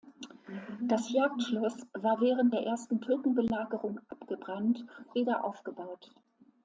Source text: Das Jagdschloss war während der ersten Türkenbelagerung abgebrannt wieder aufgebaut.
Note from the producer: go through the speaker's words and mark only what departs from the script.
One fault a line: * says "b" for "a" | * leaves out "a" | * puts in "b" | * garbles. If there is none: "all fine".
all fine